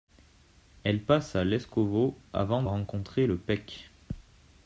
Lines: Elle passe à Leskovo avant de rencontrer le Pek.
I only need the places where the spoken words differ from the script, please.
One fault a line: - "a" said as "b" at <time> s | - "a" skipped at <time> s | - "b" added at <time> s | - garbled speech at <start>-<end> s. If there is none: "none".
- "de" skipped at 2.6 s